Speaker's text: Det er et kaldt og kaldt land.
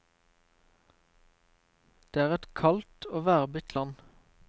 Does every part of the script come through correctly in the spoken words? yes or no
no